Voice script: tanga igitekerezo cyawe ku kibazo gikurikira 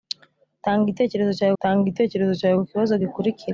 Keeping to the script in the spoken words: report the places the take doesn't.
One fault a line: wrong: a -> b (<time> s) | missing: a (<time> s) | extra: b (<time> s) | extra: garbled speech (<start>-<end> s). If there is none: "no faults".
extra: tanga igitekerezo cyawe (1.6 s)